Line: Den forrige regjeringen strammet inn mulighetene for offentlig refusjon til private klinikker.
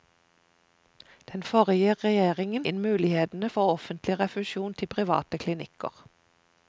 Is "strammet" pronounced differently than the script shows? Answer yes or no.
yes